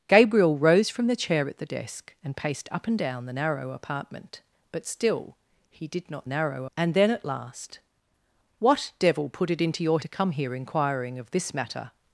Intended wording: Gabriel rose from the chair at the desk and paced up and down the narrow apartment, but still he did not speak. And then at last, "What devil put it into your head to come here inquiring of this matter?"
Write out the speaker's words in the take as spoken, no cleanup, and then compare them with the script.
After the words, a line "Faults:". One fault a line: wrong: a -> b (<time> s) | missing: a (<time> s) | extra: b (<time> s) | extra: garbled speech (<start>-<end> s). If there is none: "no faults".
Gabriel rose from the chair at the desk and paced up and down the narrow apartment, but still he did not narrow. And then at last, "What devil put it into your to come here inquiring of this matter?"
Faults:
wrong: speak -> narrow (6.3 s)
missing: head (10.0 s)